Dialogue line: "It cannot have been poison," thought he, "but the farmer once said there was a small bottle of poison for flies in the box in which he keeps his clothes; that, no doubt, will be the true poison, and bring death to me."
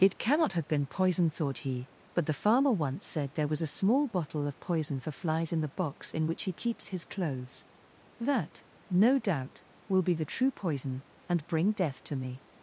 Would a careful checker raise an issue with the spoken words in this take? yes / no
no